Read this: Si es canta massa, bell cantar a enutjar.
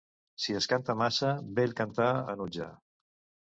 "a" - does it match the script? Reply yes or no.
yes